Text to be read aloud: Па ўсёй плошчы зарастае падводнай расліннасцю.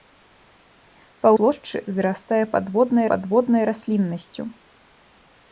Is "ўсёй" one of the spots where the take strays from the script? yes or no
yes